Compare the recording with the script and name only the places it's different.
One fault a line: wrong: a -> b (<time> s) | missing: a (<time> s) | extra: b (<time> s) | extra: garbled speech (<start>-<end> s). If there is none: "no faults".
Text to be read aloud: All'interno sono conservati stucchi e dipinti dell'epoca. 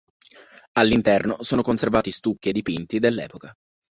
no faults